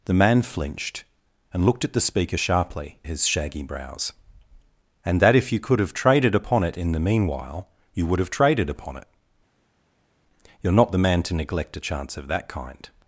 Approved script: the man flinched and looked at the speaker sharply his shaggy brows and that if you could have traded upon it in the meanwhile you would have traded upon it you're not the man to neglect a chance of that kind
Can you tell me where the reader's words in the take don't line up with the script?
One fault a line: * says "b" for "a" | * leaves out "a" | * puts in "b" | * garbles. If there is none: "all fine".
all fine